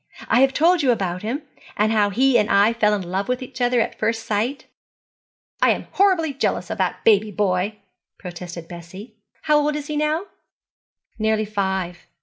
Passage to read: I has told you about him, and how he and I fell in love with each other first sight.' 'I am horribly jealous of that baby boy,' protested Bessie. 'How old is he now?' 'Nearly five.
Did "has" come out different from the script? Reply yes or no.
yes